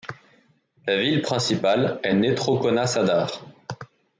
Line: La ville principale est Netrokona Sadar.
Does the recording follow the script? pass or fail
pass